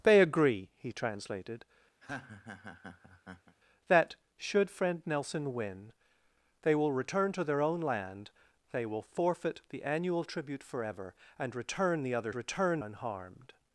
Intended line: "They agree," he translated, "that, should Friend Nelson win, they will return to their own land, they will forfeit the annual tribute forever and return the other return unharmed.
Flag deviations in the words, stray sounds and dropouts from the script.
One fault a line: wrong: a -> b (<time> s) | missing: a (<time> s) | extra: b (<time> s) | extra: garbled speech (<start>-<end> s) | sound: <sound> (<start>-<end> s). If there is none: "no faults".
sound: laugh (2.0-3.6 s)